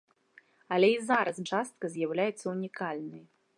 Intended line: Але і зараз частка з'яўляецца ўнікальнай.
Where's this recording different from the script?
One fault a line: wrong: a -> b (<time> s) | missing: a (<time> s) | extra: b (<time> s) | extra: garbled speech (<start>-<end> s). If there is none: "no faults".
no faults